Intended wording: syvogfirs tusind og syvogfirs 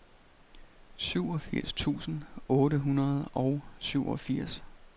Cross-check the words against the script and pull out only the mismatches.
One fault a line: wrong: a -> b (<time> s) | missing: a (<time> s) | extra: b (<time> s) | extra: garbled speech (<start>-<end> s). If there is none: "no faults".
extra: otte hundrede (2.5 s)